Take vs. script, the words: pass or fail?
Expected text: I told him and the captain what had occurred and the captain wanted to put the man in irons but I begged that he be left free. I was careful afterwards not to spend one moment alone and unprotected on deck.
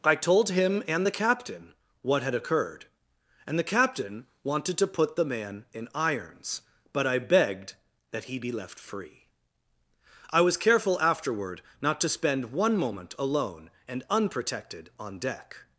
fail